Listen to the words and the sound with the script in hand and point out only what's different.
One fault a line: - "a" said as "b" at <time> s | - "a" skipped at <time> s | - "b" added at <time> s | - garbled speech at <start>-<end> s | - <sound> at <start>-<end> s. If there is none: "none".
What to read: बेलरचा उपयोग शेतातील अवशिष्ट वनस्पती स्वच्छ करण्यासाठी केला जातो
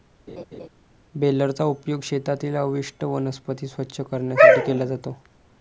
- laugh at 0.3-0.7 s